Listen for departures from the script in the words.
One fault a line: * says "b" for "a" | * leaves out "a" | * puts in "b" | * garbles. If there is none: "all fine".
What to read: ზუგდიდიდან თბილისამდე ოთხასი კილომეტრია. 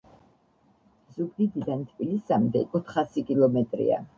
all fine